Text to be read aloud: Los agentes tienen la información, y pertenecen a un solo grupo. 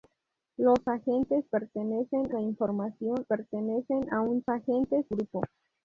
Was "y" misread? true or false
true